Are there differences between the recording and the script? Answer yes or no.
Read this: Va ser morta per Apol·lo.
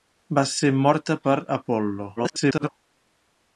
yes